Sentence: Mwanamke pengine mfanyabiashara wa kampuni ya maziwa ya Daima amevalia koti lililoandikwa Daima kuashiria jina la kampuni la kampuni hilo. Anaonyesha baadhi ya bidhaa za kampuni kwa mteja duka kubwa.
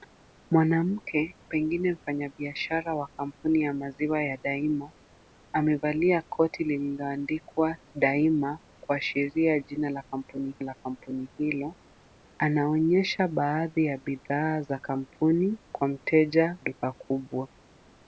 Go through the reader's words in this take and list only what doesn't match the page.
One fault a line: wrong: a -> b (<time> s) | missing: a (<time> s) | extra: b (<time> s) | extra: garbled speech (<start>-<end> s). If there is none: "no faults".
no faults